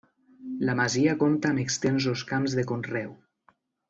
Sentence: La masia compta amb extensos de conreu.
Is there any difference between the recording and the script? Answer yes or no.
yes